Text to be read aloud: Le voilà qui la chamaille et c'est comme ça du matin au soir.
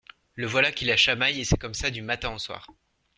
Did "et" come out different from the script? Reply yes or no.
no